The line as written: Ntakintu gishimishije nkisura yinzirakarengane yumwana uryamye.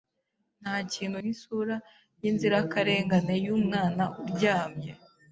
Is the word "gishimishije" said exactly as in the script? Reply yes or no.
no